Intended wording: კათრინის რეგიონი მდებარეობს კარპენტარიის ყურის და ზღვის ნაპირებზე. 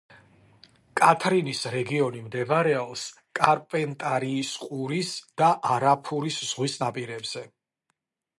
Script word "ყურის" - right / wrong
right